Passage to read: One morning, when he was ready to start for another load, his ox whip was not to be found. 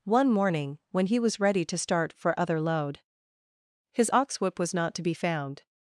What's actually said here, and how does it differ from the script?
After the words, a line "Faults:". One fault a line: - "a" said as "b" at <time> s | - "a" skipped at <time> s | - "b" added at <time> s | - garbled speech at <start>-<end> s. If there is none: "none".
One morning, when he was ready to start for other load, his ox whip was not to be found.
Faults:
- "another" said as "other" at 2.4 s